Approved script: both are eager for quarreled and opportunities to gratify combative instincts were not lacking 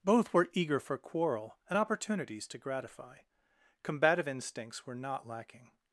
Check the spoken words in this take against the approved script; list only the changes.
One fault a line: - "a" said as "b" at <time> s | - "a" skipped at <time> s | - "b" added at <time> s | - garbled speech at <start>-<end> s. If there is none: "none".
- "are" said as "were" at 0.3 s
- "quarreled" said as "quarrel" at 1.0 s